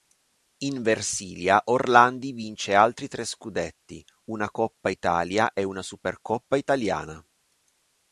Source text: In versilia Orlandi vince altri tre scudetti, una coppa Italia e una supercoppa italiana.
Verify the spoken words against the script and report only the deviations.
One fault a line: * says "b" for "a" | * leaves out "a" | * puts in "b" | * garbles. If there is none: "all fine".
all fine